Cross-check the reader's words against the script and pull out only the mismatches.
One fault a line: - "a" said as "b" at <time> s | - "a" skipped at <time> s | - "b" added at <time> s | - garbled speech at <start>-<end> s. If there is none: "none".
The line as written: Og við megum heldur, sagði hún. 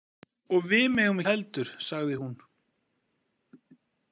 none